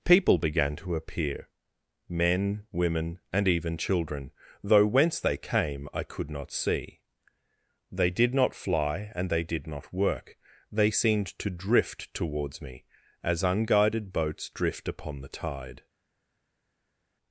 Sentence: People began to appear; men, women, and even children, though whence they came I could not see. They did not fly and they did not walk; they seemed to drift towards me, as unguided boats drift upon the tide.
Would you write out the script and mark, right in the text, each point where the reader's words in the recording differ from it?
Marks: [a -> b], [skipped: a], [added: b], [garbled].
People began to appear; men, women, and even children, though whence they came I could not see. They did not fly and they did not [walk; -> work] they seemed to drift towards me, as unguided boats drift upon the tide.